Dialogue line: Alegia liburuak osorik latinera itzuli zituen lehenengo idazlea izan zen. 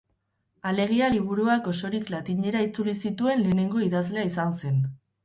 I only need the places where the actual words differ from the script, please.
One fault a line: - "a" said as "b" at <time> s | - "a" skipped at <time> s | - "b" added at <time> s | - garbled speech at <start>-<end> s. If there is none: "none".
none